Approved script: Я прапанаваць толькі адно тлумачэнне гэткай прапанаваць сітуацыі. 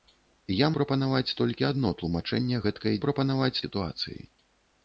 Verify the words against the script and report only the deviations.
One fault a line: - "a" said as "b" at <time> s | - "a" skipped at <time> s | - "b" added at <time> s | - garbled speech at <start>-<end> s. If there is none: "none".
none